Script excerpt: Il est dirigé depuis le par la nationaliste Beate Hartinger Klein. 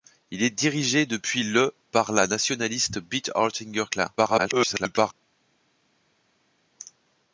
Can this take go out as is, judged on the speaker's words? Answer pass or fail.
fail